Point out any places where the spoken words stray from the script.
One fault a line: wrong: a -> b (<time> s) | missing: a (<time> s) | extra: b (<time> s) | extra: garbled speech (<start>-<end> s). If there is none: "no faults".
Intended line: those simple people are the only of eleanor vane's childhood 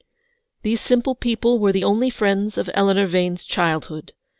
wrong: those -> these (0.6 s)
wrong: are -> were (1.6 s)
extra: friends (2.1 s)